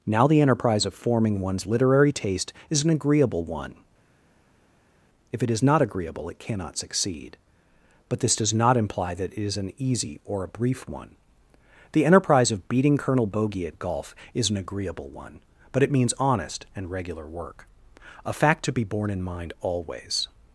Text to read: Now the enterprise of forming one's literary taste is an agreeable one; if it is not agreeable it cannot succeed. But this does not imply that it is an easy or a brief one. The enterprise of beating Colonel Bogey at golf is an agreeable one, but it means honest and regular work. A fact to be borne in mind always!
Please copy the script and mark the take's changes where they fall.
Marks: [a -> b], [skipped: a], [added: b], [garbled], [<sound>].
Now the enterprise of forming one's literary taste is an agreeable one; if it is not agreeable it cannot succeed. But this does not imply that it is an easy or a brief one. The enterprise of beating Colonel Bogey at golf is an agreeable one, but it means honest and regular work. A fact to be borne in mind always!